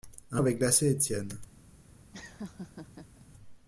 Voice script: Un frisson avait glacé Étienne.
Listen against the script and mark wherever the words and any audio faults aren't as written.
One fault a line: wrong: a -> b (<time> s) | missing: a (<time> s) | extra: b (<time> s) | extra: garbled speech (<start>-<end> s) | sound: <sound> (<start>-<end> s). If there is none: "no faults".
missing: frisson (0.4 s)
sound: laugh (2.1-3.3 s)